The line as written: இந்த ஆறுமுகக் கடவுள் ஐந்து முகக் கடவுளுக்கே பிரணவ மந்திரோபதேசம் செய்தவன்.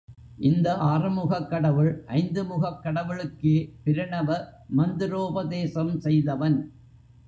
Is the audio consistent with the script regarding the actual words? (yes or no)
yes